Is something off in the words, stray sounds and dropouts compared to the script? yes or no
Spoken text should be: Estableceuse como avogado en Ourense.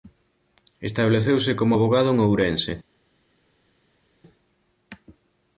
no